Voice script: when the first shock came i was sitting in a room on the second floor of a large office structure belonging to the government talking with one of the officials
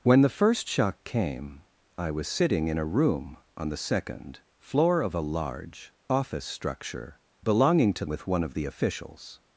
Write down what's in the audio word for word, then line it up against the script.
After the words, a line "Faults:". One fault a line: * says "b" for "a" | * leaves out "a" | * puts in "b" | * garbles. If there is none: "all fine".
when the first shock came i was sitting in a room on the second floor of a large office structure belonging to with one of the officials
Faults:
* leaves out "the government talking"